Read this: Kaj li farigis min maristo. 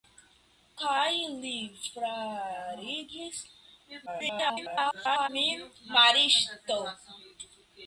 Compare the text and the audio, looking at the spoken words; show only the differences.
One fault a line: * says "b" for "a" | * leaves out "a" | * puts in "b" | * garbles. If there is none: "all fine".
* garbles